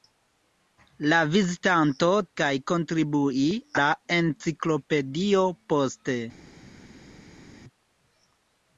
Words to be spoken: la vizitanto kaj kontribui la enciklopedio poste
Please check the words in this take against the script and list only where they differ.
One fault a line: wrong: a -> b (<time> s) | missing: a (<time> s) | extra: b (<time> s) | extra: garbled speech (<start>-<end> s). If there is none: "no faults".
no faults